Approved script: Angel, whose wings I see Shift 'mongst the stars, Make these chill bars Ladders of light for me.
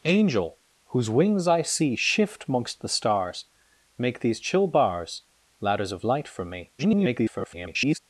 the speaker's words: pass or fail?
fail